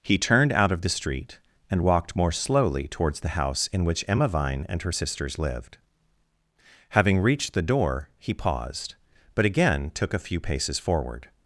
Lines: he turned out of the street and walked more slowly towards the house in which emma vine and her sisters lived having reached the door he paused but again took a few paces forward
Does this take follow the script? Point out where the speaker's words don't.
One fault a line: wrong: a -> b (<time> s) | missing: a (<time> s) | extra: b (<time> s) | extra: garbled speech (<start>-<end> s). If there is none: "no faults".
no faults